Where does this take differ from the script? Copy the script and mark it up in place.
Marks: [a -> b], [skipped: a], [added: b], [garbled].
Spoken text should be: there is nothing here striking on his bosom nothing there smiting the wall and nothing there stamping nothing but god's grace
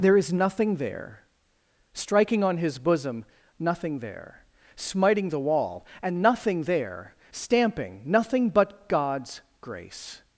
there is nothing [here -> there] striking on his bosom nothing there smiting the wall and nothing there stamping nothing but god's grace